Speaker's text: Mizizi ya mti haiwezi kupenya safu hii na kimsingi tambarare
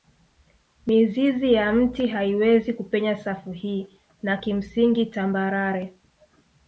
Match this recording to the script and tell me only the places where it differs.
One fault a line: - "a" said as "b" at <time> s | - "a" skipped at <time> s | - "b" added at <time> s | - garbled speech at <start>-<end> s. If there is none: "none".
none